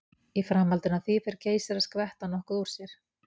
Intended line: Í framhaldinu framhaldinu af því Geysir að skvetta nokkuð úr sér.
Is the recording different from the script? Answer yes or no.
yes